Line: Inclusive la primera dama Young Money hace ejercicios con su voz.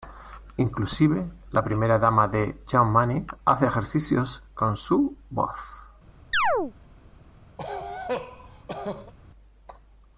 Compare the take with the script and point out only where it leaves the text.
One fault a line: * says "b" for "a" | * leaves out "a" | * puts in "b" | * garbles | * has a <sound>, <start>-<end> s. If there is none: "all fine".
* puts in "de"
* has a chirp, 6.3-6.7 s
* has a cough, 7.6-9.1 s